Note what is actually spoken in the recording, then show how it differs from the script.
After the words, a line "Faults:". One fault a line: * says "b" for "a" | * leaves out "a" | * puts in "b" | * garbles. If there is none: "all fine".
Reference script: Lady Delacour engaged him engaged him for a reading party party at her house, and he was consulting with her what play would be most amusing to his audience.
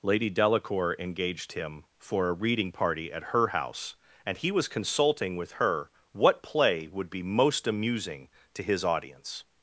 Lady Delacour engaged him for a reading party at her house, and he was consulting with her what play would be most amusing to his audience.
Faults:
* leaves out "engaged him"
* leaves out "party"